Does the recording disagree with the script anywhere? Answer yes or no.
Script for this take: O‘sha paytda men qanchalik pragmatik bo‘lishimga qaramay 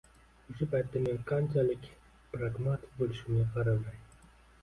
no